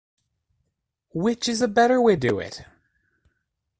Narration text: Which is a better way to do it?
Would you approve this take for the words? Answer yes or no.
no